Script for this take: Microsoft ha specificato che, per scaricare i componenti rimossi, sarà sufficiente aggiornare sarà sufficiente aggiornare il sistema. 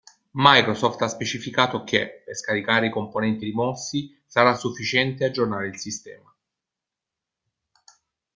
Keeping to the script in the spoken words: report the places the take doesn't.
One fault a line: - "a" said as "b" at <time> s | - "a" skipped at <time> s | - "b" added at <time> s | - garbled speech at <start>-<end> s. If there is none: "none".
- "sarà sufficiente aggiornare" skipped at 5.7 s